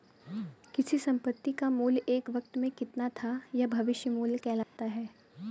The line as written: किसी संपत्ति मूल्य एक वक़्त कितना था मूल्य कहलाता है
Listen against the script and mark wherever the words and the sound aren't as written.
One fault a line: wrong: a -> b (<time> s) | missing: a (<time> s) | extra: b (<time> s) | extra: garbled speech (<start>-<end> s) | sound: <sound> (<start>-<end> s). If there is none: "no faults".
extra: का (1.5 s)
extra: में (2.6 s)
extra: यह भविष्य (3.5 s)
sound: dropout (4.6-4.8 s)